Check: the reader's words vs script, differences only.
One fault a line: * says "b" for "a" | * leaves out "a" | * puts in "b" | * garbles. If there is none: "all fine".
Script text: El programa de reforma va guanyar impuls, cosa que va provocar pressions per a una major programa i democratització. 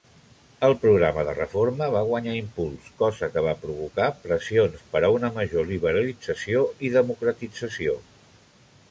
* says "liberalització" for "programa"